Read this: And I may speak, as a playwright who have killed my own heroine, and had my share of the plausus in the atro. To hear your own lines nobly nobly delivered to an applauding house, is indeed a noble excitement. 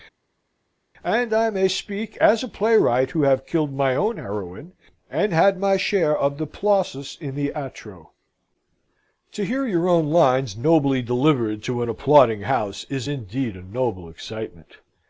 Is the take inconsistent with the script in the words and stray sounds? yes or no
yes